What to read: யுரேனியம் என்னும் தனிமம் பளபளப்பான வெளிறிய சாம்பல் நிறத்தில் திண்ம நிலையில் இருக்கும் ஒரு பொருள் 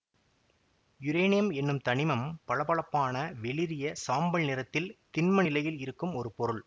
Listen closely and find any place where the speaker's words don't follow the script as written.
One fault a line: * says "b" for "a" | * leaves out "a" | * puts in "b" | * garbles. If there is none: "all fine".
all fine